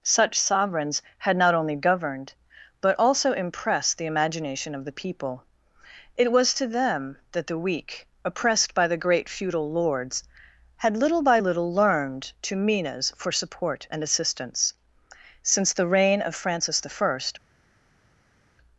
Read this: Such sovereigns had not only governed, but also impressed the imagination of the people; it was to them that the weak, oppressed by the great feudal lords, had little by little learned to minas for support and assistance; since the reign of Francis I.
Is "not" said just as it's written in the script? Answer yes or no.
yes